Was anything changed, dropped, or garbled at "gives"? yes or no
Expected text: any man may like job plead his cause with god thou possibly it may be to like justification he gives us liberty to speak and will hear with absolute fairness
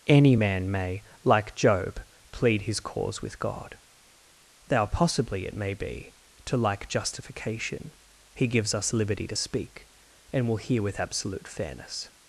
no